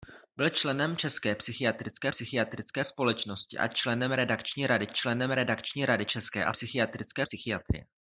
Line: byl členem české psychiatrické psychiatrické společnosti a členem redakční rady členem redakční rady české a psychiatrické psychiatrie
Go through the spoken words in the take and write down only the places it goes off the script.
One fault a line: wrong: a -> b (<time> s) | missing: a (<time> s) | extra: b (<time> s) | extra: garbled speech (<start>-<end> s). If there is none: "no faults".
no faults